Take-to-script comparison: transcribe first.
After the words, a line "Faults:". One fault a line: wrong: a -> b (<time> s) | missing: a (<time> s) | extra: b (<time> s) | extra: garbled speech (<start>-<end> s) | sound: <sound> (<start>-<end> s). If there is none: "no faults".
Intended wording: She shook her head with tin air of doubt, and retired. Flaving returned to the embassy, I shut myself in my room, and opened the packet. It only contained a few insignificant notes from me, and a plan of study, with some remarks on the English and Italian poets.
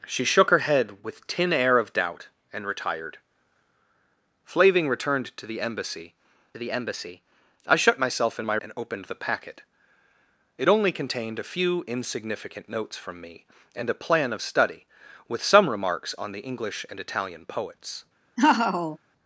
She shook her head with tin air of doubt, and retired. Flaving returned to the embassy the embassy, I shut myself in my and opened the packet. It only contained a few insignificant notes from me, and a plan of study, with some remarks on the English and Italian poets.
Faults:
extra: the embassy (6.6 s)
missing: room (8.6 s)
sound: laugh (18.4-19.0 s)